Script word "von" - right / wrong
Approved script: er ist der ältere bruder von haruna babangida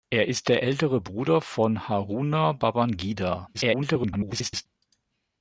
right